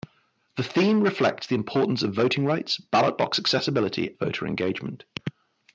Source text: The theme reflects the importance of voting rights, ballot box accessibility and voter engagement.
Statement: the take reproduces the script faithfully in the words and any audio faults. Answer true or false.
false